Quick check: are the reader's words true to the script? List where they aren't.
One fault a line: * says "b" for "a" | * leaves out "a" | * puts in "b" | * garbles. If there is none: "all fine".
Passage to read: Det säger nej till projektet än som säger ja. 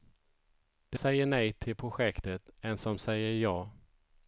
all fine